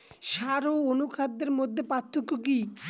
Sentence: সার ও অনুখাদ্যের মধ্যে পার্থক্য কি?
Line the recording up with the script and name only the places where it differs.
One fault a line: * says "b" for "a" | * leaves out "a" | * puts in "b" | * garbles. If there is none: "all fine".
all fine